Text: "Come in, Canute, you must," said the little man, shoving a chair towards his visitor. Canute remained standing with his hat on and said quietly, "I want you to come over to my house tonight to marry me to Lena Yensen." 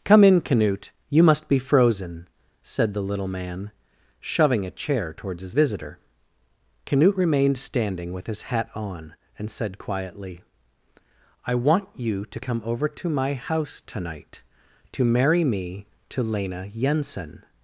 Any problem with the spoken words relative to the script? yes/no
yes